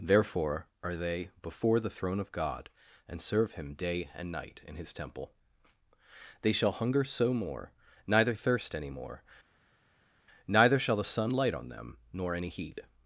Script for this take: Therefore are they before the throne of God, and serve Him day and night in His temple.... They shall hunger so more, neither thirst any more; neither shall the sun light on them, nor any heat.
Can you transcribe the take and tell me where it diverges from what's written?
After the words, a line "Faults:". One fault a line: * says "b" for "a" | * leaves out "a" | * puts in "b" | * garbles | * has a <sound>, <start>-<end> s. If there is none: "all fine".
Therefore are they before the throne of God, and serve Him day and night in His temple.... They shall hunger so more, neither thirst any more; neither shall the sun light on them, nor any heat.
Faults:
all fine